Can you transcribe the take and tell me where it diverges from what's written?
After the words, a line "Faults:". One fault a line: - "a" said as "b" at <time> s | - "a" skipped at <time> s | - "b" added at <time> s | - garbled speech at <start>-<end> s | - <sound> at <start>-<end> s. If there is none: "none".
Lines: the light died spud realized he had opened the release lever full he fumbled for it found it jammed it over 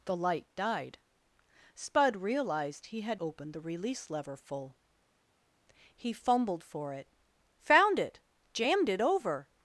the light died spud realized he had opened the release lever full he fumbled for it found it jammed it over
Faults:
none